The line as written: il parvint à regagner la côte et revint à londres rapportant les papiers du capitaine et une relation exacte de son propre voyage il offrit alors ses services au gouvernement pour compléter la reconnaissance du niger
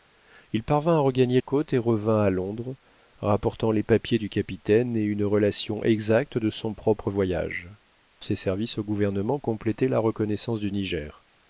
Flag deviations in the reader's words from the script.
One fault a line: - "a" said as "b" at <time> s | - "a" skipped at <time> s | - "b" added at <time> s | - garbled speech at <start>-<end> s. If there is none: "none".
- "la" skipped at 1.4 s
- "il offrit alors" skipped at 7.7 s
- "pour" skipped at 9.4 s